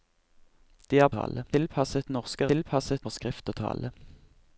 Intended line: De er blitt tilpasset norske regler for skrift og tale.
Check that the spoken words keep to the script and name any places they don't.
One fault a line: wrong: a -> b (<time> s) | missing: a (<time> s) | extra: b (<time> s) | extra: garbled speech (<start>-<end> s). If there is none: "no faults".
wrong: blitt -> tale (1.2 s)
wrong: regler -> tilpasset (2.5 s)